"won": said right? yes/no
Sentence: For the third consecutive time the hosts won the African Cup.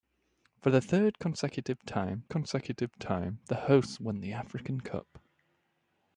yes